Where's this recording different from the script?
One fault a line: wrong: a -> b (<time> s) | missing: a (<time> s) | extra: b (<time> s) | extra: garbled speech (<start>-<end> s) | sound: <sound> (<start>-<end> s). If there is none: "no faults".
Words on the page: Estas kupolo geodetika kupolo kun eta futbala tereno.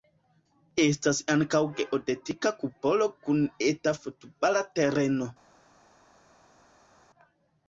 wrong: kupolo -> ankaŭ (1.3 s)